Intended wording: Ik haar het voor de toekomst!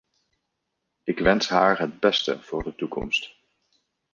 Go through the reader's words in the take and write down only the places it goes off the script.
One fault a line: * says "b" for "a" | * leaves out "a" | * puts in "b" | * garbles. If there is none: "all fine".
* puts in "wens"
* puts in "beste"